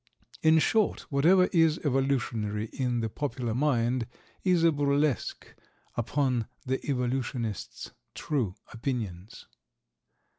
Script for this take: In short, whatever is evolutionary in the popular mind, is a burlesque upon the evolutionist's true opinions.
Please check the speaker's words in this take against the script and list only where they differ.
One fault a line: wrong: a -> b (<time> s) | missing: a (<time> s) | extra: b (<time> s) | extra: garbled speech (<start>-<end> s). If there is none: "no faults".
no faults